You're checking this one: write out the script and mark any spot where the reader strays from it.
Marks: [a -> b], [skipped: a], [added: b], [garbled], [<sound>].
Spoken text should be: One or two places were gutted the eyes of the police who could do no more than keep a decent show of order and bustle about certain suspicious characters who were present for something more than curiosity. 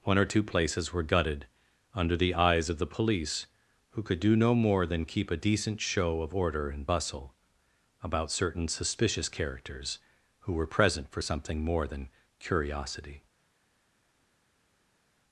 One or two places were gutted [added: under] the eyes of the police who could do no more than keep a decent show of order and bustle about certain suspicious characters who were present for something more than curiosity.